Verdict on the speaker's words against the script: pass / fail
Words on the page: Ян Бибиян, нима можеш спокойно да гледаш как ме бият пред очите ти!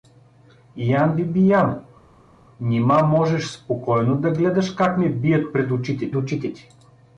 fail